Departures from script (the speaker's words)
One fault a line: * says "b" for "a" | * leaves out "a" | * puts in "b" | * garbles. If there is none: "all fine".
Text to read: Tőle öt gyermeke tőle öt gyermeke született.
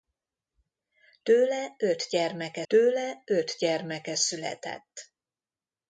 all fine